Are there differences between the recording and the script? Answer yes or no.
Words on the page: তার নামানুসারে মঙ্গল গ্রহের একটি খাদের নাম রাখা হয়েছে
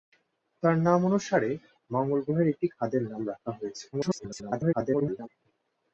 yes